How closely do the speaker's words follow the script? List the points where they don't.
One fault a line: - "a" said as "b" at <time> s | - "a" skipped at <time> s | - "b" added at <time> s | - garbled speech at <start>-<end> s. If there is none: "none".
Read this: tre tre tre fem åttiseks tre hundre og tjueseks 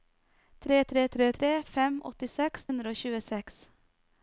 - "tre" added at 1.4 s
- "tre" skipped at 2.7 s